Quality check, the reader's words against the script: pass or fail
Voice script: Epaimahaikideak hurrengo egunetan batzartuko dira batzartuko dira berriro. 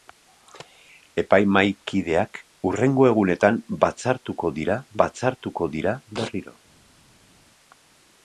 pass